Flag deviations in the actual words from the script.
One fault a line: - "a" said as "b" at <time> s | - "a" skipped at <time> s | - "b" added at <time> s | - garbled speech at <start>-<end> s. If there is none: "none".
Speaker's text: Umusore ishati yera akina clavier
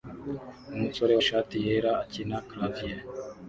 none